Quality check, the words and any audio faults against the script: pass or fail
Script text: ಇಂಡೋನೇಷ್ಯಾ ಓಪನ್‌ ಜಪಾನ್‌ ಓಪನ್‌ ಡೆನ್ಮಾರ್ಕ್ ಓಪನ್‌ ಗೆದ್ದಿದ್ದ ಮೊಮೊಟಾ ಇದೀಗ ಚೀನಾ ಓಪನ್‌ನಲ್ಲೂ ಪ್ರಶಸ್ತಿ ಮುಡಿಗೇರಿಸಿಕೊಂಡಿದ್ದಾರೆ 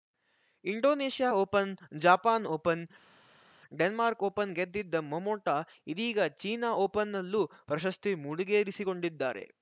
pass